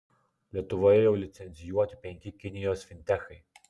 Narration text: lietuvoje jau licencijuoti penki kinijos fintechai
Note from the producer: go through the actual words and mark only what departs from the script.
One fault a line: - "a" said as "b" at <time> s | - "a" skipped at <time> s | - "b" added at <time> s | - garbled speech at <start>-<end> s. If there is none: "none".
none